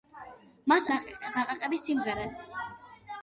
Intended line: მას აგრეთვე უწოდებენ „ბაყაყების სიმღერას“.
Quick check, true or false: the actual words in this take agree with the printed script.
false